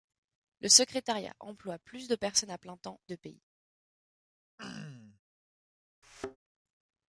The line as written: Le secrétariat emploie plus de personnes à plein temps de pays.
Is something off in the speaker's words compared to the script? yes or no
no